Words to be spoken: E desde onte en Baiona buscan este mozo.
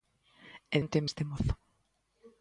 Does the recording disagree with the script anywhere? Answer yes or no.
yes